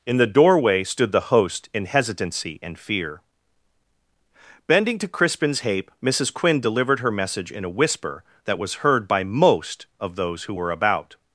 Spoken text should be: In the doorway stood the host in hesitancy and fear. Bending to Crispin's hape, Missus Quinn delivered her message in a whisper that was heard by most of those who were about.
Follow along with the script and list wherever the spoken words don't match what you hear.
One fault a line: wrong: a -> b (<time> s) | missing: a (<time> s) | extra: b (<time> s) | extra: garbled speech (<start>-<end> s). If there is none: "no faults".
no faults